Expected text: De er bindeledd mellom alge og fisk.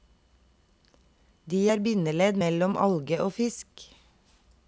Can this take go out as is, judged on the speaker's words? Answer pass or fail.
pass